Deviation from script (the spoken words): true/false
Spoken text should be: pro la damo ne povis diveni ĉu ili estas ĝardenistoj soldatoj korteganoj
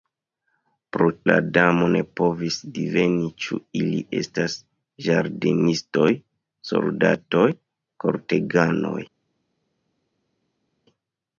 false